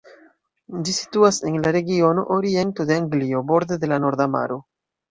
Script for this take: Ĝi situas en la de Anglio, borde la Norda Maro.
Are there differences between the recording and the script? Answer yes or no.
yes